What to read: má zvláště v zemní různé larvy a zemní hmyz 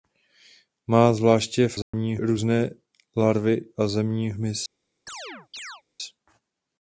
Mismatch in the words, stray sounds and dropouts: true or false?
true